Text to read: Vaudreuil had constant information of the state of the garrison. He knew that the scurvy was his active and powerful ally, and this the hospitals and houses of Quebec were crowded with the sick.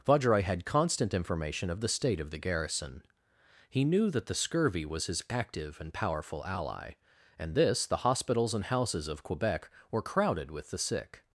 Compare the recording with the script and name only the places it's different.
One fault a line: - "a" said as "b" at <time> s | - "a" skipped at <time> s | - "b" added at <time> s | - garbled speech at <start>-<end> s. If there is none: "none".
none